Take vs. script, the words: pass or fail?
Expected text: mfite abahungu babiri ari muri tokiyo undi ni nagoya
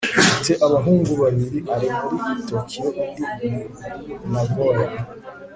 pass